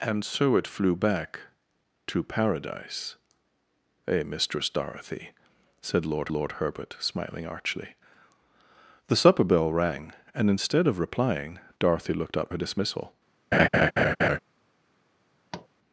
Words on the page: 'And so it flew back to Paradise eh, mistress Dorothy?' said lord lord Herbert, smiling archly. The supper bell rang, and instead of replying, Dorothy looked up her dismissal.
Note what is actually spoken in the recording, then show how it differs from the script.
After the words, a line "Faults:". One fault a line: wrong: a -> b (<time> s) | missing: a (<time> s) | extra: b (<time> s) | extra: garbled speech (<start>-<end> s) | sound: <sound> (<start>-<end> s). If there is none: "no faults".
'And so it flew back to Paradise eh, mistress Dorothy?' said lord lord Herbert, smiling archly. The supper bell rang, and instead of replying, Dorothy looked up her dismissal.
Faults:
sound: laugh (13.5-14.4 s)
sound: tap (15.5-15.7 s)